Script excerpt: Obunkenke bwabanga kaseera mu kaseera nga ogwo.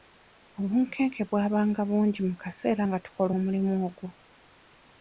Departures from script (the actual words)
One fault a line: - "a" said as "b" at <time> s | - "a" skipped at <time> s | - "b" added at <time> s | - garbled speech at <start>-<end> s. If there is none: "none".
- "kaseera" said as "bungi" at 1.9 s
- "tukola omulimu" added at 3.0 s